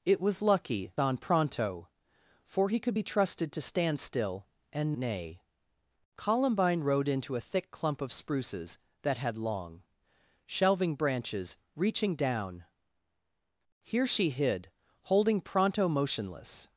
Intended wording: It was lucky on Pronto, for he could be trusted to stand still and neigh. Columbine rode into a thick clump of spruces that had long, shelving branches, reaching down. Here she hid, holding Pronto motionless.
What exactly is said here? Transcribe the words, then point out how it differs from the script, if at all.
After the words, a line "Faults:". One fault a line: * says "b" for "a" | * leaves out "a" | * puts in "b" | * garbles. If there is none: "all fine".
It was lucky on Pronto, for he could be trusted to stand still and neigh. Columbine rode into a thick clump of spruces that had long, shelving branches, reaching down. Here she hid, holding Pronto motionless.
Faults:
all fine